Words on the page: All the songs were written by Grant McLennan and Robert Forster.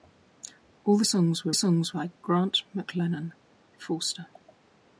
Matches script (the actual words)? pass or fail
fail